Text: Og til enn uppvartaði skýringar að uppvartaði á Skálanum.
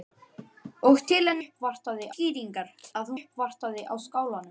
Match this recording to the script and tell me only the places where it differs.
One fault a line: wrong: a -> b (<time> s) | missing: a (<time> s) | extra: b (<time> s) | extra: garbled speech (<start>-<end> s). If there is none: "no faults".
no faults